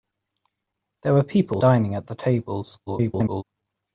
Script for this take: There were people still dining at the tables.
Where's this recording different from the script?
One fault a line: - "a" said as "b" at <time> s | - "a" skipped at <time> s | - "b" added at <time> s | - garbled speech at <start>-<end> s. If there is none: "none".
- "still" skipped at 1.6 s
- garbled speech at 2.9-3.4 s